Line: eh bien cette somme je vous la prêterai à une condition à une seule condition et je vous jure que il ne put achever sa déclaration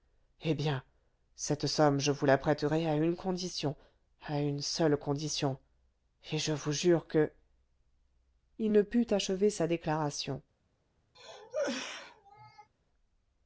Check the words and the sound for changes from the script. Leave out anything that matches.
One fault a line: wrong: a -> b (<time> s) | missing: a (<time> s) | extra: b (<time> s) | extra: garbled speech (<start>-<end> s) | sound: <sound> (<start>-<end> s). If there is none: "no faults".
sound: cough (11.1-12.7 s)